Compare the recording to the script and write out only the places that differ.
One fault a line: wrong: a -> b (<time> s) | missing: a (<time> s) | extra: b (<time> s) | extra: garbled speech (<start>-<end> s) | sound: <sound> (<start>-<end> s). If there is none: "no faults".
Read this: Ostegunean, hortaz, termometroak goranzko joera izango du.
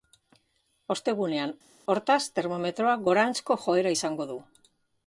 no faults